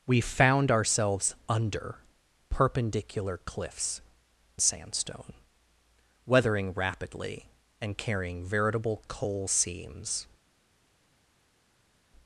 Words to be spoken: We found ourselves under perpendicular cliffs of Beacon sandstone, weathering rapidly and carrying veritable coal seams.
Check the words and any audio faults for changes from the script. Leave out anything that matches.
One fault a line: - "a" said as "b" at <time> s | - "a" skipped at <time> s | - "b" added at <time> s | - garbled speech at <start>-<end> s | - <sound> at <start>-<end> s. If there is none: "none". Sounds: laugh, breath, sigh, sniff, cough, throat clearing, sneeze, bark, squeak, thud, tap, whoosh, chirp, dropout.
- "of Beacon" skipped at 4.0 s